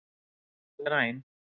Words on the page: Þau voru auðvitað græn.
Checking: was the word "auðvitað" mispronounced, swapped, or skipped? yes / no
yes